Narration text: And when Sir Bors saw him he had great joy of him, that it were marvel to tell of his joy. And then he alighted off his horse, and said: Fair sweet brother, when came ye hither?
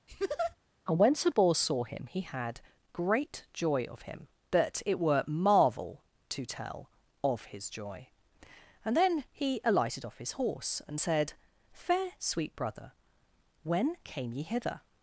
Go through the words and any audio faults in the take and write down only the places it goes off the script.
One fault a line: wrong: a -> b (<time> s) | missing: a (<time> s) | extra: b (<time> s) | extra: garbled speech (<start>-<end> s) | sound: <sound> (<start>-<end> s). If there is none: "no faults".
sound: laugh (0.1-0.6 s)